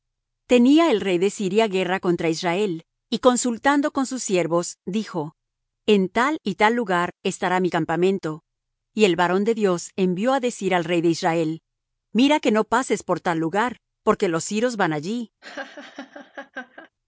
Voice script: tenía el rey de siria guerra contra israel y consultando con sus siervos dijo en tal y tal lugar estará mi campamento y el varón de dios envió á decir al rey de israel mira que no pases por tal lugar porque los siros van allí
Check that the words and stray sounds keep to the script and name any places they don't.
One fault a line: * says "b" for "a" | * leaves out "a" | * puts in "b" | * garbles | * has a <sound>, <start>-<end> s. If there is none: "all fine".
* has a laugh, 15.4-16.9 s